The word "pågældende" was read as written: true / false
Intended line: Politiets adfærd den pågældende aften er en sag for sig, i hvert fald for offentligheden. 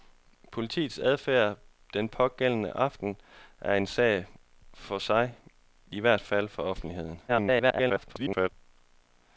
true